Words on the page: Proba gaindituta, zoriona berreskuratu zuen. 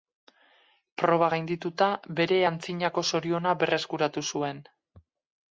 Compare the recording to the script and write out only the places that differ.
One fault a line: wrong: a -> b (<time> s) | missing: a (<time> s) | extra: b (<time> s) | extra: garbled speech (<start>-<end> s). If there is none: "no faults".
extra: bere antzinako (2.2 s)